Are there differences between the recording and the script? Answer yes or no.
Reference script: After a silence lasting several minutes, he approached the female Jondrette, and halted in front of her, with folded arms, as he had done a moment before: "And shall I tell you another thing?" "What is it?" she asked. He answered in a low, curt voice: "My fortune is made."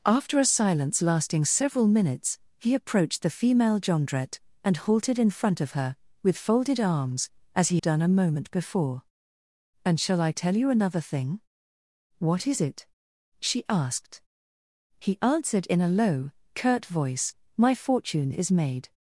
yes